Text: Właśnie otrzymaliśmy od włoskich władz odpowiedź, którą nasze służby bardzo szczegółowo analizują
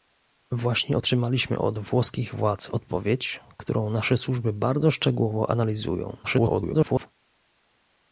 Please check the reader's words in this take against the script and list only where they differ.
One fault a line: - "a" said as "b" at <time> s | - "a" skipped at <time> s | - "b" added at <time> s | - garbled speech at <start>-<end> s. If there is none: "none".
- garbled speech at 6.2-7.1 s